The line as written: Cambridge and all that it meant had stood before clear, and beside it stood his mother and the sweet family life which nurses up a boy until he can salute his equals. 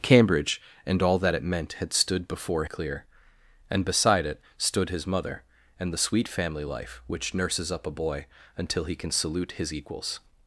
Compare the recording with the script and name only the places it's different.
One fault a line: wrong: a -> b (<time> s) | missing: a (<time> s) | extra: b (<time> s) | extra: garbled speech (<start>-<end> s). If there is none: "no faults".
no faults